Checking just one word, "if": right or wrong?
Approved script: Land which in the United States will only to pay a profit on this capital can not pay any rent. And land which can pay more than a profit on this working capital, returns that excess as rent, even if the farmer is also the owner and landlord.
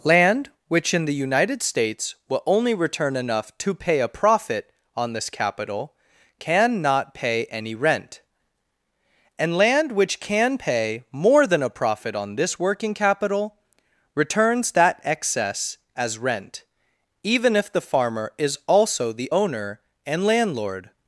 right